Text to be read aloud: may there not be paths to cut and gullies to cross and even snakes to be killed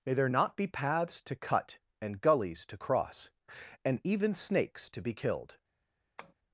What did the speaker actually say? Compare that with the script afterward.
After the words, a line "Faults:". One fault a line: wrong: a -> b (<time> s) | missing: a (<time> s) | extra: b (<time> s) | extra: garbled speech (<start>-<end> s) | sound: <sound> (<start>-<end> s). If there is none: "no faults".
may there not be paths to cut and gullies to cross and even snakes to be killed
Faults:
sound: tap (6.2-6.3 s)